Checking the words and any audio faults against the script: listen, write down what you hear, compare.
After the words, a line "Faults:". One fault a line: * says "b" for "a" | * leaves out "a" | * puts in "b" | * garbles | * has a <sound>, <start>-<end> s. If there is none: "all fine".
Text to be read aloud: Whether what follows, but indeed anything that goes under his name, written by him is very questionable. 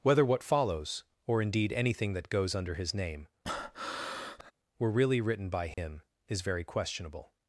Whether what follows, or indeed anything that goes under his name, were really written by him is very questionable.
Faults:
* says "or" for "but"
* has a breath, 3.4-4.5 s
* puts in "were really"
* has a dropout, 5.7-5.8 s